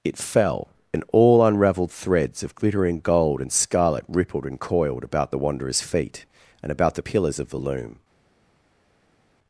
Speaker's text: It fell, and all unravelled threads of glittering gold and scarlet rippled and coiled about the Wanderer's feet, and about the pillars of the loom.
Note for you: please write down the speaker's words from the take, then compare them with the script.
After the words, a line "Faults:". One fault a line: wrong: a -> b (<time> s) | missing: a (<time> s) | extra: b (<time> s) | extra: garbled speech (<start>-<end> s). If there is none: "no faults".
It fell, and all unravelled threads of glittering gold and scarlet rippled and coiled about the Wanderer's feet, and about the pillars of the loom.
Faults:
no faults